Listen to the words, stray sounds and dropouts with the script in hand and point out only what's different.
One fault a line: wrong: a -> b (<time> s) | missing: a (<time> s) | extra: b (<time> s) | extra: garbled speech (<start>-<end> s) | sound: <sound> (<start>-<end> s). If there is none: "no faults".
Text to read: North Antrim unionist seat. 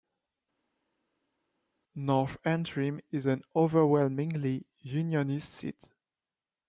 extra: is an overwhelmingly (3.1 s)